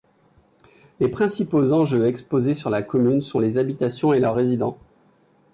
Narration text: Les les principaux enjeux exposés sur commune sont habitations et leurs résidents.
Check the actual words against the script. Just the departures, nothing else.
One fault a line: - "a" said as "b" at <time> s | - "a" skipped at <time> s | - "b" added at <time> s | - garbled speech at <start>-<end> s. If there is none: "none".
- "les" skipped at 1.1 s
- "la" added at 2.7 s
- "les" added at 3.4 s